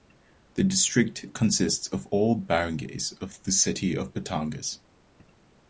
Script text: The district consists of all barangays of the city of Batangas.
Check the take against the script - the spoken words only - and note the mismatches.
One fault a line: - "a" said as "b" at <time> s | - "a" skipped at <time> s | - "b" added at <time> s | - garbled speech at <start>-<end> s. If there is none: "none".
none